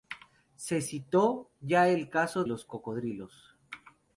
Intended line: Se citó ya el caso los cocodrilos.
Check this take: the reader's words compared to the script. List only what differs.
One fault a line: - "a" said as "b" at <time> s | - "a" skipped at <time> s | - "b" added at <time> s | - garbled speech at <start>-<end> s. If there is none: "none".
none